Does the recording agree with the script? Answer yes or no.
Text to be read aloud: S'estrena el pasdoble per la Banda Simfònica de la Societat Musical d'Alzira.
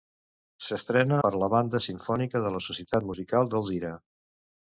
no